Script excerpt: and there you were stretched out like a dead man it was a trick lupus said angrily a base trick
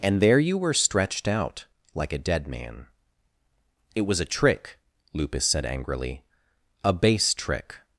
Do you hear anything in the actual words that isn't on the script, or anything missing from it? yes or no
no